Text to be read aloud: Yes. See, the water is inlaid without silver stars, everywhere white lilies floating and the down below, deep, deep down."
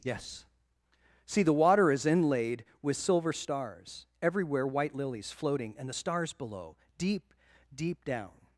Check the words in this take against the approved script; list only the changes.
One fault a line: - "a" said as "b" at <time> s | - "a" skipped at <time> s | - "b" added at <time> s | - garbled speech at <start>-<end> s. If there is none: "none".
- "without" said as "with" at 2.8 s
- "down" said as "stars" at 5.9 s